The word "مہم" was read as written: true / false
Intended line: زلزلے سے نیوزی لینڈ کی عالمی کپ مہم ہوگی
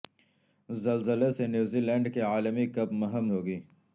true